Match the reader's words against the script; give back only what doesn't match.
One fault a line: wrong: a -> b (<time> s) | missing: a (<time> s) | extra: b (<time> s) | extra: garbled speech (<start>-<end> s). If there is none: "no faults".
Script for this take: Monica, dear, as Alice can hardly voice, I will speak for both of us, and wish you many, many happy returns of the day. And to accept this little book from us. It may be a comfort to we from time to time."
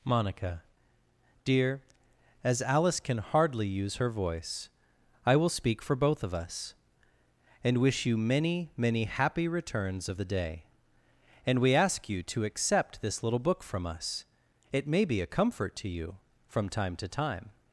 extra: use her (3.7 s)
extra: we ask you (11.6 s)
wrong: we -> you (15.9 s)